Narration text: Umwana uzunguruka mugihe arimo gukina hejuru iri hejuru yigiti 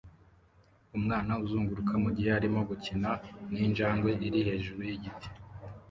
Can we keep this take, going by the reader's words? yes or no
no